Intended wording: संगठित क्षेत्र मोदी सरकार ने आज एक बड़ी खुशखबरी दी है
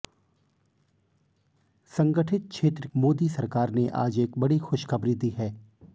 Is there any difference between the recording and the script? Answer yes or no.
no